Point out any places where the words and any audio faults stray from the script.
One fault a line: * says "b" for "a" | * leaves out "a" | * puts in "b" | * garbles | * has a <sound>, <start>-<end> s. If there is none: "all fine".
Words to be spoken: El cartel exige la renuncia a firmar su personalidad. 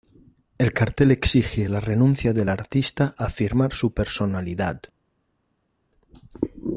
* puts in "del artista"